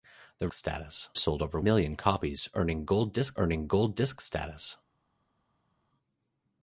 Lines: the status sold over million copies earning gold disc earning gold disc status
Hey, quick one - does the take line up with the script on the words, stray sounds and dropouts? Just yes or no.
yes